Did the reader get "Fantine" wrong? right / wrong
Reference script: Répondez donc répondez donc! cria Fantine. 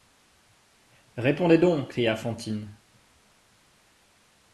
right